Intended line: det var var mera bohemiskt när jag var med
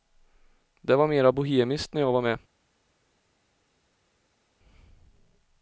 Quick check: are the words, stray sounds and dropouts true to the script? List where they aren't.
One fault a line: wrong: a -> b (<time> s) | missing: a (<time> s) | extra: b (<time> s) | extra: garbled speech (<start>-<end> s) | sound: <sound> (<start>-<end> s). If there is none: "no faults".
missing: var (1.1 s)